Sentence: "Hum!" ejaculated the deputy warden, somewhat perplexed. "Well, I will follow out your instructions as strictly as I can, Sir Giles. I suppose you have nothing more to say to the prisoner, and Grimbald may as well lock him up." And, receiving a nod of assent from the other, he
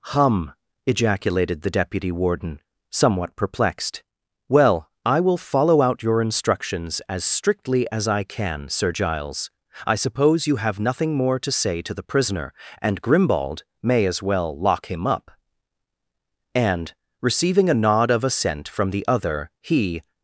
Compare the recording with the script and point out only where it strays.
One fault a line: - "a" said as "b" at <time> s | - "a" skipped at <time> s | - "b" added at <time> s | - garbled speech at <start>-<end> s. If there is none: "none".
none